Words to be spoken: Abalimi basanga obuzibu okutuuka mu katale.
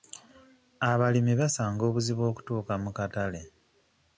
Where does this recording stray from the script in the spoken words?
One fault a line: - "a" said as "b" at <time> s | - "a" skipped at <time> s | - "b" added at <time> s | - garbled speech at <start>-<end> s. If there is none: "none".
none